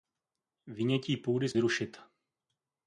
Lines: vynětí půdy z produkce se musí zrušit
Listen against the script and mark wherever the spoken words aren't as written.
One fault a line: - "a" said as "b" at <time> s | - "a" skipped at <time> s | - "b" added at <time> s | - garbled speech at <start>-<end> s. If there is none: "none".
- "produkce se musí" skipped at 1.5 s